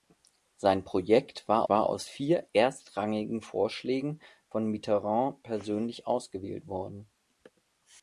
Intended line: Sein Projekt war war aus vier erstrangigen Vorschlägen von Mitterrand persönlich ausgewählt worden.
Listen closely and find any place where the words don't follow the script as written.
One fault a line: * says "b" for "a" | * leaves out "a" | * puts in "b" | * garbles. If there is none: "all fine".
all fine